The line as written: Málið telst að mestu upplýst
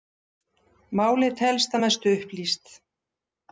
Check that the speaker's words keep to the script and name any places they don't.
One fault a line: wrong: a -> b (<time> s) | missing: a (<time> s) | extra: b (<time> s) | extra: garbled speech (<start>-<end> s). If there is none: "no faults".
no faults